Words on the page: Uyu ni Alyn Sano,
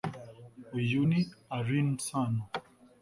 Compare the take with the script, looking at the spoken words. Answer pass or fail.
pass